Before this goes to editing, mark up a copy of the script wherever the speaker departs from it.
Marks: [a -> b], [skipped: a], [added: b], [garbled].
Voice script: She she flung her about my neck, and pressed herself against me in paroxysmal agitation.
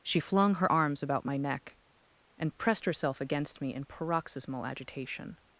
She [skipped: she] flung her [added: arms] about my neck, and pressed herself against me in paroxysmal agitation.